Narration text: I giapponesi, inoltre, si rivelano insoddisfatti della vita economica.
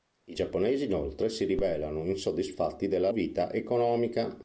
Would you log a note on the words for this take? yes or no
no